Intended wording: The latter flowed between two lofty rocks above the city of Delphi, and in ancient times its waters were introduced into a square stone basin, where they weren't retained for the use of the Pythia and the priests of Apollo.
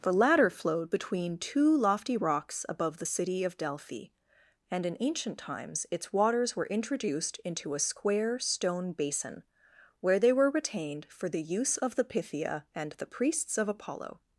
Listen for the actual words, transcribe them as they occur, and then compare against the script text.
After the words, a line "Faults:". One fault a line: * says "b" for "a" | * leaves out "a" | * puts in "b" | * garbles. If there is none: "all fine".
The latter flowed between two lofty rocks above the city of Delphi, and in ancient times its waters were introduced into a square stone basin, where they were retained for the use of the Pythia and the priests of Apollo.
Faults:
* says "were" for "weren't"